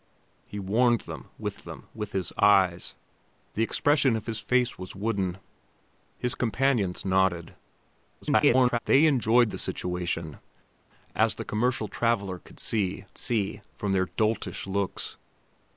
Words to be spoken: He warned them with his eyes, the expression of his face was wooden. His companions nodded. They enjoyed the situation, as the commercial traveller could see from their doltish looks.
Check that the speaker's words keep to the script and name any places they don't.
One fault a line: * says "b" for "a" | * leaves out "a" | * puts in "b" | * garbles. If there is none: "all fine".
* puts in "them with"
* garbles
* puts in "see"